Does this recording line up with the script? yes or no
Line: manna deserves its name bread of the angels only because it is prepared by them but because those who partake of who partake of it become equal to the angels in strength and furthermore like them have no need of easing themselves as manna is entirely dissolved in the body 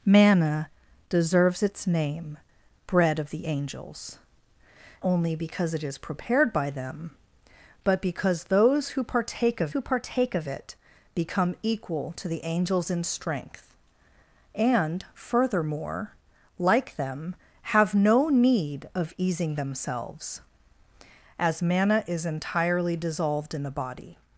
yes